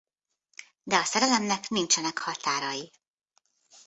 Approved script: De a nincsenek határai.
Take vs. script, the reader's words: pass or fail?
fail